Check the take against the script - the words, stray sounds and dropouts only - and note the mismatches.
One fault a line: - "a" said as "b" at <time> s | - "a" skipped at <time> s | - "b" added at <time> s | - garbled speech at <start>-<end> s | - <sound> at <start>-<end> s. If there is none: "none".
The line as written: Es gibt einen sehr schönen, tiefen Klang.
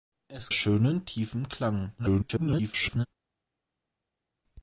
- "gibt einen sehr" skipped at 0.5 s
- garbled speech at 2.0-3.1 s